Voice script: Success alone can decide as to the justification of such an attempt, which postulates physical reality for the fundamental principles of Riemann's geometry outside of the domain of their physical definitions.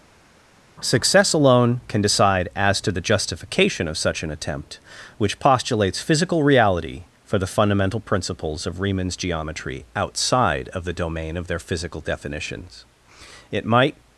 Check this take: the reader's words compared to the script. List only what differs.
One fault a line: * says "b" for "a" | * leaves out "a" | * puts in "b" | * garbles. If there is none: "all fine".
* puts in "It might"